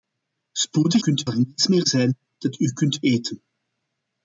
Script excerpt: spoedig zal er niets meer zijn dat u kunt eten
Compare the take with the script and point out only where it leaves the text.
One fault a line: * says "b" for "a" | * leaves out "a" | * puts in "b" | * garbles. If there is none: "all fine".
* says "kunt" for "zal"